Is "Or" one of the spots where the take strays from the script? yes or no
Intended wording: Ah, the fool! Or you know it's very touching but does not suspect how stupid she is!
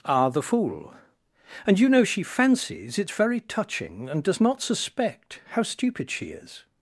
yes